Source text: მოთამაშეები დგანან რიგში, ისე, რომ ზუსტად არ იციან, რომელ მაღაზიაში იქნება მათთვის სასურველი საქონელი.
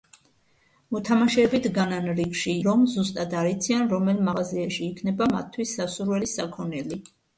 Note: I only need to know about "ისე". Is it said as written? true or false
false